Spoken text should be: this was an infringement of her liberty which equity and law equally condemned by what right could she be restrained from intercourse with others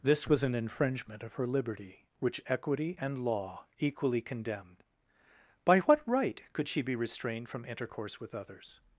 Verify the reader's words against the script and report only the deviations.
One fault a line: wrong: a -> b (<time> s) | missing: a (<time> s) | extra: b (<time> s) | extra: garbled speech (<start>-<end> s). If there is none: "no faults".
no faults